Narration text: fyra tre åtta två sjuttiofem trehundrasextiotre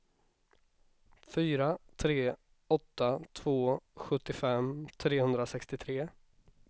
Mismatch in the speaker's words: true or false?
false